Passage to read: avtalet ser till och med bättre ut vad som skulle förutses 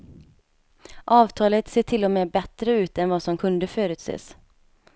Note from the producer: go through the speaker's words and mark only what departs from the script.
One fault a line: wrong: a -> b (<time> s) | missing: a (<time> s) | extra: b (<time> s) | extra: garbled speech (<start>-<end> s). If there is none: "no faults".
extra: än (3.0 s)
wrong: skulle -> kunde (3.3 s)